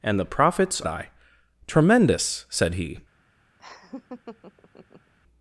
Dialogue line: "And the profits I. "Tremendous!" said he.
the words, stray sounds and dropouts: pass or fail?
fail